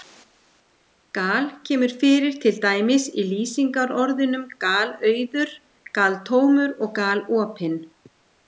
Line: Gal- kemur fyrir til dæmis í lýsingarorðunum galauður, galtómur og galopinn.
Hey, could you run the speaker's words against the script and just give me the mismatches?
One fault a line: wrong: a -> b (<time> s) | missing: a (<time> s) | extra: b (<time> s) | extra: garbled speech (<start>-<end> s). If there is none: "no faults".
no faults